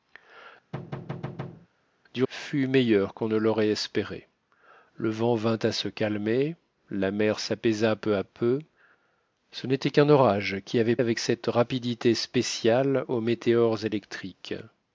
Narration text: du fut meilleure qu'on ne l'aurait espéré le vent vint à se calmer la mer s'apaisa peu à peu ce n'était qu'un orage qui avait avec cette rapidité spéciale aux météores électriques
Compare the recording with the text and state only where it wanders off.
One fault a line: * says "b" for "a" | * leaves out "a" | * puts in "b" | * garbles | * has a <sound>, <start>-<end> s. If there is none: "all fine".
* has a thud, 0.7-1.7 s